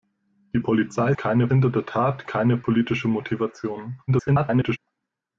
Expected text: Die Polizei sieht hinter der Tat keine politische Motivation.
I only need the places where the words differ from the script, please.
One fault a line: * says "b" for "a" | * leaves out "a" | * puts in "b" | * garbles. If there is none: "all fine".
* says "keine" for "sieht"
* garbles